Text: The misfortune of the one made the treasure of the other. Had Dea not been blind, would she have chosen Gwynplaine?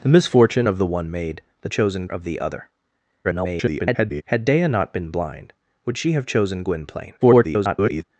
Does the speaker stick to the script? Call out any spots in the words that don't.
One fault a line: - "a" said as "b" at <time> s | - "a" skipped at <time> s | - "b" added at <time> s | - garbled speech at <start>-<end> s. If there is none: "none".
- "treasure" said as "chosen" at 1.7 s
- garbled speech at 3.2-4.2 s
- garbled speech at 7.2-8.0 s